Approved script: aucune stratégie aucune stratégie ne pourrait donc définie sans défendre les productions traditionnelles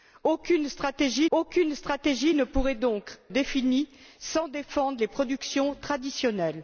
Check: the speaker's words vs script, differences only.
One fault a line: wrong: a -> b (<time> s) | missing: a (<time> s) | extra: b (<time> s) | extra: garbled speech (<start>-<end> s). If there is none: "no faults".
no faults